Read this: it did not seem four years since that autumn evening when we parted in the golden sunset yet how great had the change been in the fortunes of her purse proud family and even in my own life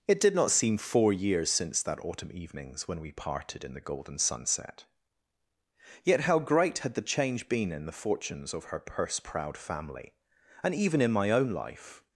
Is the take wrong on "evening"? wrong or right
wrong